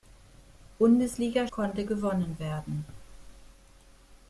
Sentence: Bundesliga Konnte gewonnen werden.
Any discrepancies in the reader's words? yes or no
no